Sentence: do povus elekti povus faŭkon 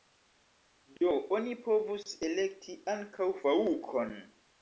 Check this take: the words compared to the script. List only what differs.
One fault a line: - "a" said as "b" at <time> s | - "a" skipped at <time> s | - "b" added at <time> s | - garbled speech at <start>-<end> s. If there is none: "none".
- "oni" added at 1.4 s
- "povus" said as "ankaŭ" at 3.0 s